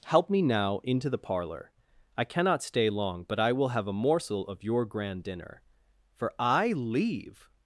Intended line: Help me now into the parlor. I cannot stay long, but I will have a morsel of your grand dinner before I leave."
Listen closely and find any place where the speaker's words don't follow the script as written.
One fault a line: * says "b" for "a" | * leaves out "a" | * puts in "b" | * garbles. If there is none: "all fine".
* says "for" for "before"